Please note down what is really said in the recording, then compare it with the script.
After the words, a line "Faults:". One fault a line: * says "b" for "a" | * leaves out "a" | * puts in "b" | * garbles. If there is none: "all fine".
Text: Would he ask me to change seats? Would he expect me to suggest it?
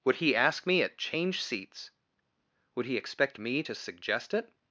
Would he ask me at change seats? Would he expect me to suggest it?
Faults:
* says "at" for "to"